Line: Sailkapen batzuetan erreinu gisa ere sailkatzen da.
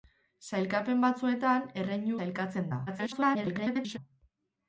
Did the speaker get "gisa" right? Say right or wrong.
wrong